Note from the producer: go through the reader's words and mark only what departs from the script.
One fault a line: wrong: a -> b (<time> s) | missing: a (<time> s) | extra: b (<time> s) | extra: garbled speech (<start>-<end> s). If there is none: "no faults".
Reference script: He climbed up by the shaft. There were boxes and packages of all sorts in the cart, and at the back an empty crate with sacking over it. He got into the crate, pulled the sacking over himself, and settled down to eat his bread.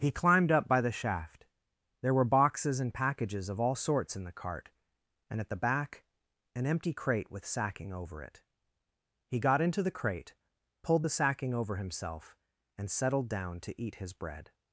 no faults